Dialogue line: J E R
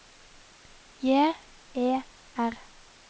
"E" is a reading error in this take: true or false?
false